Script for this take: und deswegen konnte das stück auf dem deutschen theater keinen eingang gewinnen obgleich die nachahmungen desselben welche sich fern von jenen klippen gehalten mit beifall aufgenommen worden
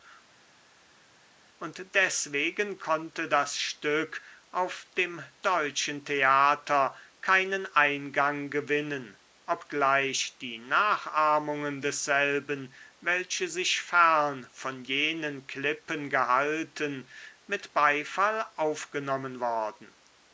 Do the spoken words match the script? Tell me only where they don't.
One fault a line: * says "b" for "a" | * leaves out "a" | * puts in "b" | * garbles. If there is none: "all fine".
all fine